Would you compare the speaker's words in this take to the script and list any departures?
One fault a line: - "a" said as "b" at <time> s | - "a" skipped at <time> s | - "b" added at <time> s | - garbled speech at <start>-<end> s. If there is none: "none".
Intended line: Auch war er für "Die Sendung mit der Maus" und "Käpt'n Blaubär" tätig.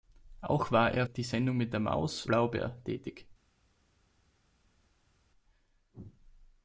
- "für" skipped at 1.1 s
- "und Käpt'n" skipped at 2.3 s